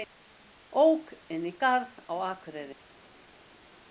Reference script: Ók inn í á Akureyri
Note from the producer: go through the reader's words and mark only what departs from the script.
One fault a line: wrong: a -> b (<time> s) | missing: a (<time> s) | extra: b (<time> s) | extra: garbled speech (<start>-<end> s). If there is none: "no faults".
extra: garð (1.6 s)